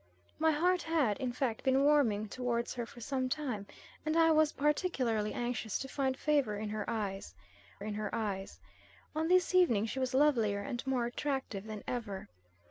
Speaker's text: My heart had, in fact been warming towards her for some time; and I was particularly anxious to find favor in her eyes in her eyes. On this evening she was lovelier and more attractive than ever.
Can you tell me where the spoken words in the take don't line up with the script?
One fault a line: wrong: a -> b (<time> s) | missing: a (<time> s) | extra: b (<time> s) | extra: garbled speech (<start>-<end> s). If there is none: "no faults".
no faults